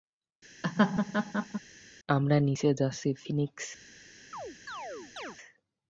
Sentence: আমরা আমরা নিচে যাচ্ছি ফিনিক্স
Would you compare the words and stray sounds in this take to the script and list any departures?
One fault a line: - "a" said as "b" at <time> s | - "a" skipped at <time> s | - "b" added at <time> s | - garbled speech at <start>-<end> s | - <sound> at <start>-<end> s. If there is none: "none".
- laugh at 0.6-1.6 s
- "আমরা" skipped at 2.4 s
- chirp at 4.3-5.4 s